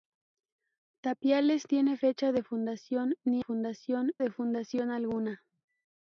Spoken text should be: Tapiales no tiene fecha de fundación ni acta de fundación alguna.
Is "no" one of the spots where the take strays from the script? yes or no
yes